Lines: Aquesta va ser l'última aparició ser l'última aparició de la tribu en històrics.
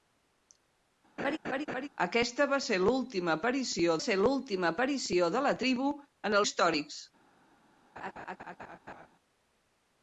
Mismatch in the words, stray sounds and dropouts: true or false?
true